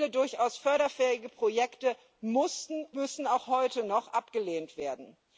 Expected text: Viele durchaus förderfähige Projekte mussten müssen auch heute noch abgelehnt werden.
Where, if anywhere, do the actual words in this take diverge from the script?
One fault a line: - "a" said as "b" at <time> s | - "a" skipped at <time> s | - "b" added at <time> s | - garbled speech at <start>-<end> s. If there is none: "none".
none